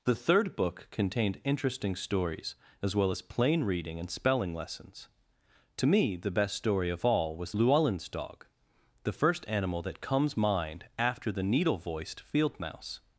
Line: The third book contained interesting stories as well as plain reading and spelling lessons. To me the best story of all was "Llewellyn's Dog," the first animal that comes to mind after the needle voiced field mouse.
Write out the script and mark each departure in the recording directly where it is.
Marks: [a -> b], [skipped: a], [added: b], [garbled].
The third book contained interesting stories as well as plain reading and spelling lessons. To me the best story of all was "Llewellyn's Dog," the first animal that comes [skipped: to] mind after the needle voiced field mouse.